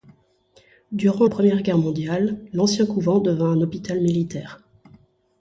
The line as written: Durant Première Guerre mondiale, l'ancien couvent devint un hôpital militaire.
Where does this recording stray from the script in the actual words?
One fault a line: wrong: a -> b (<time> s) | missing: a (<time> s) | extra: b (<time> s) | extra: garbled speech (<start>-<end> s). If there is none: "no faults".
no faults